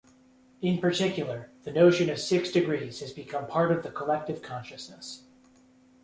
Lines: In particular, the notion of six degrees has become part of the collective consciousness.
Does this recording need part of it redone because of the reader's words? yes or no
no